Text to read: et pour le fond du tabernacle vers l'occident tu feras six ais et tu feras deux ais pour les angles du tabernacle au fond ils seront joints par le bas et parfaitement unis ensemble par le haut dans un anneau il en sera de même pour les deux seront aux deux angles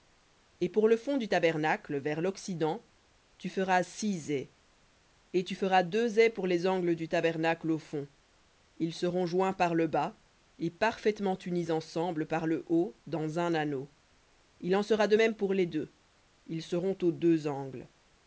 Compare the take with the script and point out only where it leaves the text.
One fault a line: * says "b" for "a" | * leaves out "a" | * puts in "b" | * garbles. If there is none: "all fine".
* puts in "ils"